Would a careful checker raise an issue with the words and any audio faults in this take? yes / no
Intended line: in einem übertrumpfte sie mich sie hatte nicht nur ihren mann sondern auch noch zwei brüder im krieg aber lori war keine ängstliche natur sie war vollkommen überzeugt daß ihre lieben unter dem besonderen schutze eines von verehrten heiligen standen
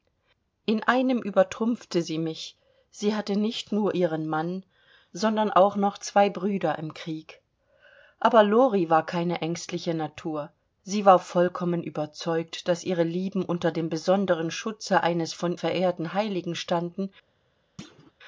yes